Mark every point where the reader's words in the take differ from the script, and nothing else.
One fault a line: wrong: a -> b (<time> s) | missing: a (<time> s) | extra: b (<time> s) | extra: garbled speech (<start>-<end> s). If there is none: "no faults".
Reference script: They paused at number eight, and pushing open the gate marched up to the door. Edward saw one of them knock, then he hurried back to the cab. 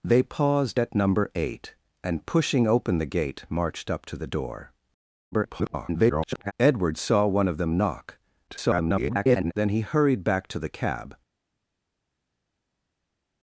extra: garbled speech (5.3-6.5 s)
extra: garbled speech (8.5-9.5 s)